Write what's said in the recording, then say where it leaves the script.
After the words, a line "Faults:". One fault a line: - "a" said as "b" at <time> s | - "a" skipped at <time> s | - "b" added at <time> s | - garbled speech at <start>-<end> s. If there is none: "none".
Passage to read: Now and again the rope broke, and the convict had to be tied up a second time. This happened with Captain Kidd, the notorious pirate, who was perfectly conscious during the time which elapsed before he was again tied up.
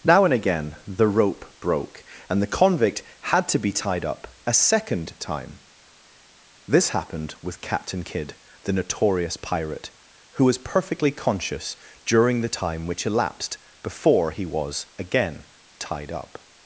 Now and again the rope broke, and the convict had to be tied up a second time. This happened with Captain Kidd, the notorious pirate, who was perfectly conscious during the time which elapsed before he was again tied up.
Faults:
none